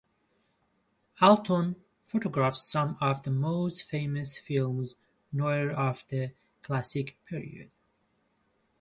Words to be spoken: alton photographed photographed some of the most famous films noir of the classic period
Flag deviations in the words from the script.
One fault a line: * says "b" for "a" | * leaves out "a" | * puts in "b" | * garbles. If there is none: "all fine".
* leaves out "photographed"